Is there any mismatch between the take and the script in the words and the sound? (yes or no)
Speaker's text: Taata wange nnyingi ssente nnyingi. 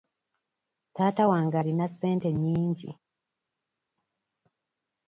yes